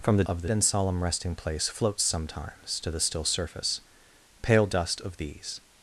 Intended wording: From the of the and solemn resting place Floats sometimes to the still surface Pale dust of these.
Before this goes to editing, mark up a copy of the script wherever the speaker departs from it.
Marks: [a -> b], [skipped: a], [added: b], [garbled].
From the of the and solemn resting place Floats sometimes to the still surface Pale dust of these.